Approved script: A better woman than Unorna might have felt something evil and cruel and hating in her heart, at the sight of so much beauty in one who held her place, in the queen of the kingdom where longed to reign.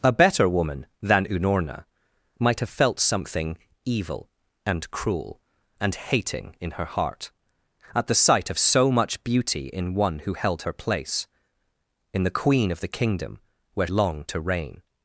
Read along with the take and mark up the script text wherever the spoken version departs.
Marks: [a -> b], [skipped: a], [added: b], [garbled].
A better woman than Unorna might have felt something evil and cruel and hating in her heart, at the sight of so much beauty in one who held her place, in the queen of the kingdom where longed to reign.